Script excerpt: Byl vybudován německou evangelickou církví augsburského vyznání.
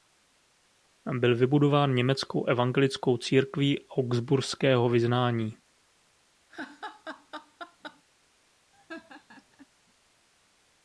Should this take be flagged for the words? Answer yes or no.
no